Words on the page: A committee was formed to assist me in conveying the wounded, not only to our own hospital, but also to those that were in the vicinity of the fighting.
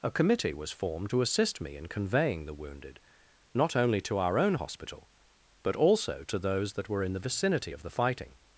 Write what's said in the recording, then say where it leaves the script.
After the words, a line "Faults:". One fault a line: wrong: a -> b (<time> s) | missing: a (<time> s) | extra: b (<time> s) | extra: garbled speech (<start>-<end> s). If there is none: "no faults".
A committee was formed to assist me in conveying the wounded, not only to our own hospital, but also to those that were in the vicinity of the fighting.
Faults:
no faults